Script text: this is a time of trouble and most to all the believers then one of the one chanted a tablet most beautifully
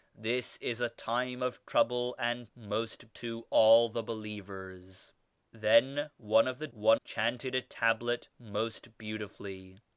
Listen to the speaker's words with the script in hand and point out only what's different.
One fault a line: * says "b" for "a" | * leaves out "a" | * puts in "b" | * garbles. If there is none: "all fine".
all fine